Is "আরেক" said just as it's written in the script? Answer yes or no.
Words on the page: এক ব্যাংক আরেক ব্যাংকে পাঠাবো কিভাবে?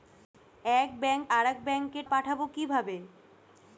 yes